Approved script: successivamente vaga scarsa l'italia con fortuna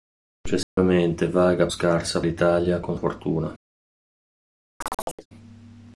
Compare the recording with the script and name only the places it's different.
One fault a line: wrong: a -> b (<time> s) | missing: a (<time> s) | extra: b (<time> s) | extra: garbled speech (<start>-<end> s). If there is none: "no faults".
no faults